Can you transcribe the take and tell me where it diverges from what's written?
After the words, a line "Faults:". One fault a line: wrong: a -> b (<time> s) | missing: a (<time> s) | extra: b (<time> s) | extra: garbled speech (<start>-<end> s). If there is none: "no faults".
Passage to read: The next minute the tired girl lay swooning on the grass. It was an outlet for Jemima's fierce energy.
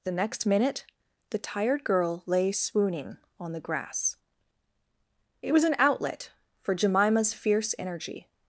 The next minute the tired girl lay swooning on the grass. It was an outlet for Jemima's fierce energy.
Faults:
no faults